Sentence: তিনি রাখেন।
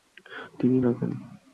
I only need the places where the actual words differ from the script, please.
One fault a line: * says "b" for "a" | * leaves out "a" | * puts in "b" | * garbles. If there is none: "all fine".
all fine